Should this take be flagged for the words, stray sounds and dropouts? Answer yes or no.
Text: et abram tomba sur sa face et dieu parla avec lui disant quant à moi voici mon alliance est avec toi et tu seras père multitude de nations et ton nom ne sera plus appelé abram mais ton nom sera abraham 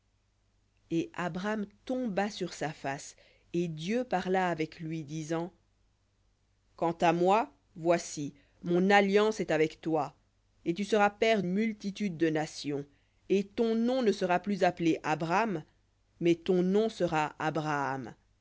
no